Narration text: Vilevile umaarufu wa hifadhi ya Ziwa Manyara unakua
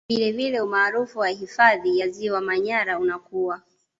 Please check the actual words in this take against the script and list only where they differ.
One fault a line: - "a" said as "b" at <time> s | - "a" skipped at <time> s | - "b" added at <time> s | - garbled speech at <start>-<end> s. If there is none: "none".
none